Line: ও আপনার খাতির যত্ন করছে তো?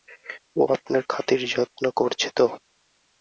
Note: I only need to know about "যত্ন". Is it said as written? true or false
true